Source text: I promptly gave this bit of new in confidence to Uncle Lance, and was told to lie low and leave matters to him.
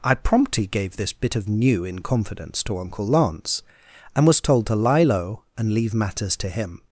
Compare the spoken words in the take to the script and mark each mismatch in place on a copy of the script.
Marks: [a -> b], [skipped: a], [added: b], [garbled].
I promptly gave this bit of new in confidence to Uncle Lance, and was told to lie low and leave matters to him.